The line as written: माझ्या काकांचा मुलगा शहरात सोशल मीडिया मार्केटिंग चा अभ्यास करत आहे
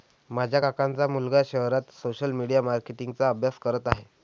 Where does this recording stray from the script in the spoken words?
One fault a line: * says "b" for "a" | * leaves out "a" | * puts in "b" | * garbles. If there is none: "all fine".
all fine